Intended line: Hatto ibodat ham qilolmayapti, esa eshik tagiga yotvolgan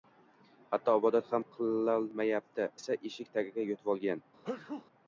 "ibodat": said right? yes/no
yes